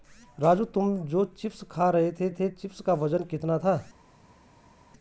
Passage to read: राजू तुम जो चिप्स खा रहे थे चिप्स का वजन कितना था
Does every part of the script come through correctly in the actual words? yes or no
no